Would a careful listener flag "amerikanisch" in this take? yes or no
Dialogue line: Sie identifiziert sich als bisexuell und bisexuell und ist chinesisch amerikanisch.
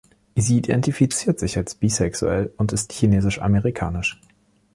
no